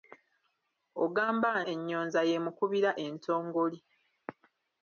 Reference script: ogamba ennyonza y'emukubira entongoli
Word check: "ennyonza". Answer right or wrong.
right